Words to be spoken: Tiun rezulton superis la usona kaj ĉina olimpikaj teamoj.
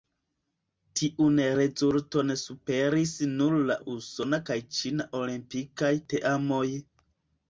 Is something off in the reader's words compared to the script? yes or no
yes